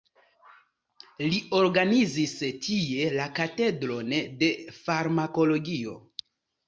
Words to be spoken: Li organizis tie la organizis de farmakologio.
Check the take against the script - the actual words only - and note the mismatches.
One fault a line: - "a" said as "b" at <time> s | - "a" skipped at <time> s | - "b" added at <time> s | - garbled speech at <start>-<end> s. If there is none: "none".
- "organizis" said as "katedron" at 3.4 s